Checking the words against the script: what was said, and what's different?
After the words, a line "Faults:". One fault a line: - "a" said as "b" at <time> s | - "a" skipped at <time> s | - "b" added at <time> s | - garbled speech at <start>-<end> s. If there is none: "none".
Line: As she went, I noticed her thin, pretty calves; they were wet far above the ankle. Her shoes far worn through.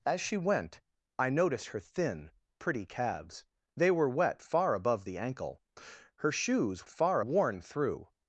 As she went, I noticed her thin, pretty calves; they were wet far above the ankle. Her shoes far worn through.
Faults:
none